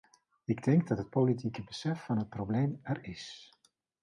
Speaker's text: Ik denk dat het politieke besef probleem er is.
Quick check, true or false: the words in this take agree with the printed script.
false